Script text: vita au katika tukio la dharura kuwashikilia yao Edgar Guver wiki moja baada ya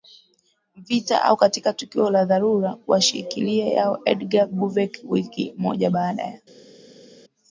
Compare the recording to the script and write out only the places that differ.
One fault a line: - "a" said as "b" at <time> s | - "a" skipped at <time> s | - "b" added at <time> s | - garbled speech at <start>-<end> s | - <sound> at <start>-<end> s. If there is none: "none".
none